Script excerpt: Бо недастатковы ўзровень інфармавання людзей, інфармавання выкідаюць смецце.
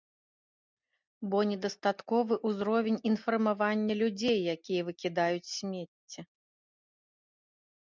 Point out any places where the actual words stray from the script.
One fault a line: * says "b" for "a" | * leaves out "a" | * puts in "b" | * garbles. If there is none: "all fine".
* says "якія" for "інфармавання"